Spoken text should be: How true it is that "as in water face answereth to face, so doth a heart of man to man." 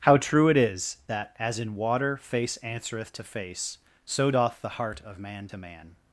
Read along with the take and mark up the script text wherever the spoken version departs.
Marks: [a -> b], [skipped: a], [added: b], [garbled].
How true it is that "as in water face answereth to face, so doth [a -> the] heart of man to man."